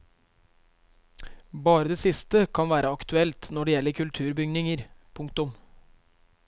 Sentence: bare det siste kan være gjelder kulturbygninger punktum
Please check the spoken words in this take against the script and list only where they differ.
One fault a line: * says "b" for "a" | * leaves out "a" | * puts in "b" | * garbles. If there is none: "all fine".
* puts in "aktuelt når det"